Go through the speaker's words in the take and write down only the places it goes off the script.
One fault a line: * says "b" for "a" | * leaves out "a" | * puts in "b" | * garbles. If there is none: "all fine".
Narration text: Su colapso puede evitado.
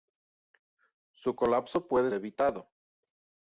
all fine